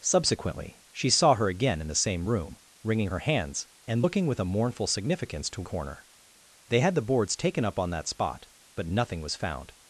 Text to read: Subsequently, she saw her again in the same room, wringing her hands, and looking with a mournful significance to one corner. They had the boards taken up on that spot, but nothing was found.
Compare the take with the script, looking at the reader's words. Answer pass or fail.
fail